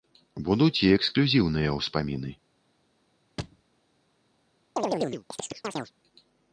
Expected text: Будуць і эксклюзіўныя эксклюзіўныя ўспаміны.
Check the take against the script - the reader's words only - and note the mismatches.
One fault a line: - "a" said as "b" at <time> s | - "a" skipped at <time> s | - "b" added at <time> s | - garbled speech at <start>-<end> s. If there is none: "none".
- "эксклюзіўныя" skipped at 1.8 s